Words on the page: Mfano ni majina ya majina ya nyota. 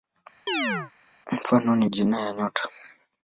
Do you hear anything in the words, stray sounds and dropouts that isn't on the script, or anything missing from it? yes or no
yes